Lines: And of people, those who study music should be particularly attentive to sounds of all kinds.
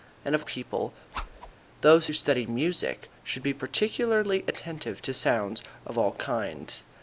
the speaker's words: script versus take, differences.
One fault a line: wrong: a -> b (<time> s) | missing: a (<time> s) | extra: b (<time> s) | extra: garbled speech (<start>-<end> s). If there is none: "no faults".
no faults